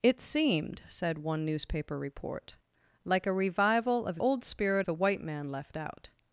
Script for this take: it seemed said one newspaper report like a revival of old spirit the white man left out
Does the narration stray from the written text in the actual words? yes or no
no